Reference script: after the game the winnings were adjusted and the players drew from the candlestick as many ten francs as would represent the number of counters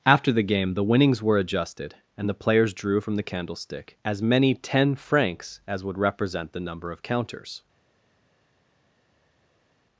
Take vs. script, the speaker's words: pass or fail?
pass